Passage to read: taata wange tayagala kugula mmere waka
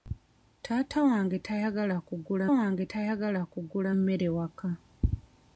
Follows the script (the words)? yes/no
no